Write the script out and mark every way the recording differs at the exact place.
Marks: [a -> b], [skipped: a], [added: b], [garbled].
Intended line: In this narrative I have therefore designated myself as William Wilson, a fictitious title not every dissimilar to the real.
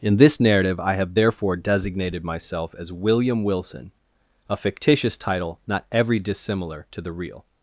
In this narrative I have therefore designated myself as William Wilson, a fictitious title not every dissimilar to the real.